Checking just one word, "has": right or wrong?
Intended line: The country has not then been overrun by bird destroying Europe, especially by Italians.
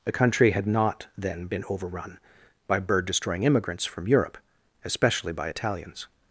wrong